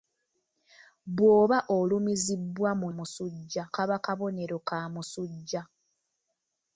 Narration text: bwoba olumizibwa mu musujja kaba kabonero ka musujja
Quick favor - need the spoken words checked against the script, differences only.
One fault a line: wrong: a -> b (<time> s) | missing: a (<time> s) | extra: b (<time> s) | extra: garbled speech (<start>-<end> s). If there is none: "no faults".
no faults